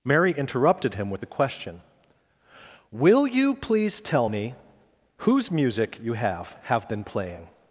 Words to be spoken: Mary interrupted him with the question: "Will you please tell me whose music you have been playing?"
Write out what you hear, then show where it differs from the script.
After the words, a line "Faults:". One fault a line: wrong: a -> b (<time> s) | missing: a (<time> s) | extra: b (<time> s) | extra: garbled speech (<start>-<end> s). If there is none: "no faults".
Mary interrupted him with the question: "Will you please tell me whose music you have have been playing?"
Faults:
extra: have (6.6 s)